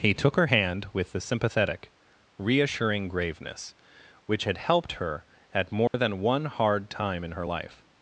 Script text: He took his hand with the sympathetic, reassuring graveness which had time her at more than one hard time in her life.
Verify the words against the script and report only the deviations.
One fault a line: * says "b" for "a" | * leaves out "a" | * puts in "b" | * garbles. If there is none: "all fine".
* says "her" for "his"
* says "helped" for "time"